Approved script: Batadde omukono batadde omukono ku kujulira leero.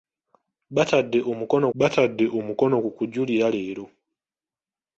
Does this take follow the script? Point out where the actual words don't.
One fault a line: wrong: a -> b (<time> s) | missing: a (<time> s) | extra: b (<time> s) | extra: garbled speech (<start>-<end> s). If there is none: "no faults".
no faults